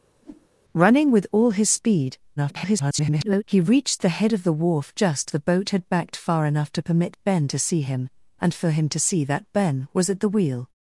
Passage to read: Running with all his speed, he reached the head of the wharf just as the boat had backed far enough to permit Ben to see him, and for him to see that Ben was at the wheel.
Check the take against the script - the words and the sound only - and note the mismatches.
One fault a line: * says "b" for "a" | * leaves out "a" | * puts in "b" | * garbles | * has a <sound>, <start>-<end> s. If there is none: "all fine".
* has a whoosh, 0.2-0.5 s
* garbles
* leaves out "as"